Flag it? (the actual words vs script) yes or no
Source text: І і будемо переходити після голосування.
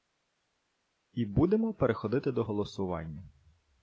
yes